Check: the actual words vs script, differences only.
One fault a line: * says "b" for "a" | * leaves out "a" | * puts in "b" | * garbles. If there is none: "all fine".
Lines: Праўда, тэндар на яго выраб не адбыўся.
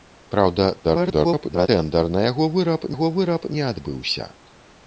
* garbles
* puts in "яго выраб"